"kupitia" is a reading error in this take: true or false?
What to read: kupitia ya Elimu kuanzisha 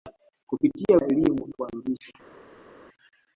false